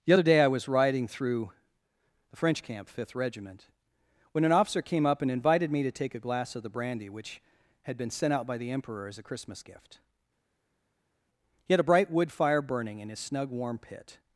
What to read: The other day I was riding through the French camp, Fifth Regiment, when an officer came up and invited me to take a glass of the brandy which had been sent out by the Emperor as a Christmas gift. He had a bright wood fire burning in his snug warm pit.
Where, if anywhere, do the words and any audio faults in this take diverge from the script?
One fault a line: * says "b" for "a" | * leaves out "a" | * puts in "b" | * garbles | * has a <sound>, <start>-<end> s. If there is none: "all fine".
all fine